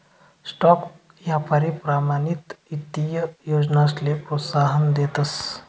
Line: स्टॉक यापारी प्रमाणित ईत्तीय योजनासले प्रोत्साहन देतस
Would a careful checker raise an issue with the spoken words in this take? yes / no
no